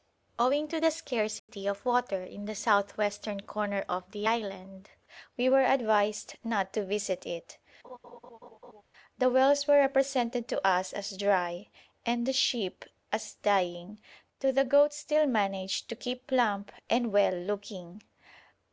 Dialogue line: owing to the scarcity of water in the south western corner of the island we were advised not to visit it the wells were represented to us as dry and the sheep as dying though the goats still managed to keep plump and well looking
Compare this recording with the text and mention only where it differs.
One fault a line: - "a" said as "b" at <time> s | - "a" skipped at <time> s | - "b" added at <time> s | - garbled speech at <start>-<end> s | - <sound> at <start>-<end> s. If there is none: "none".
- dropout at 1.4-1.5 s
- laugh at 7.8-8.8 s